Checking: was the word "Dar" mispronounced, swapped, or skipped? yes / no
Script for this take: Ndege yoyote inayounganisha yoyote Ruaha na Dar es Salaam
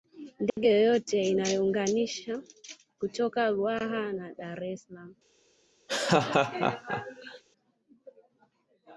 no